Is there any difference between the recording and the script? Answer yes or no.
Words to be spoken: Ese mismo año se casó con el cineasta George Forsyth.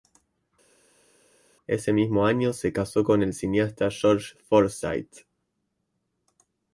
no